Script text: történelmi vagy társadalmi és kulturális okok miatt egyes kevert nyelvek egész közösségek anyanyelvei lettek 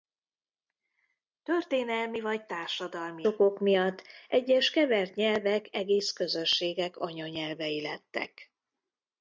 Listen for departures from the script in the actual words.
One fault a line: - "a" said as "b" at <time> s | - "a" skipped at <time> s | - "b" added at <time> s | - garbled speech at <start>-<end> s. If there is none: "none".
- "és kulturális" skipped at 3.2 s